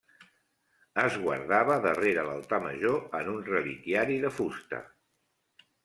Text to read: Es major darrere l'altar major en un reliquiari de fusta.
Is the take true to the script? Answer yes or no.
no